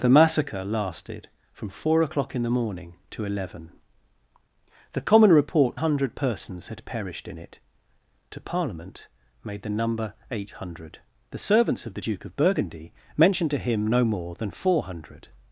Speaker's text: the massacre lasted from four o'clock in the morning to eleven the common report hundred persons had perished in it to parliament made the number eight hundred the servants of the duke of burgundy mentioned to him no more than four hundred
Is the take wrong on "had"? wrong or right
right